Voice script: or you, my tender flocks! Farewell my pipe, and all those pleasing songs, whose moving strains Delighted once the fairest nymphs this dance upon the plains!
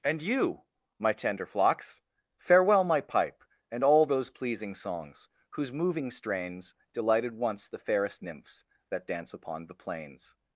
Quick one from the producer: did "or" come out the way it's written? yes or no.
no